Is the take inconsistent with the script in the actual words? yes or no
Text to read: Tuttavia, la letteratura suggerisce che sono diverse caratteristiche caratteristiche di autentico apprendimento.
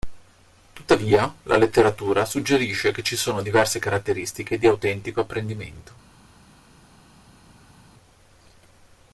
yes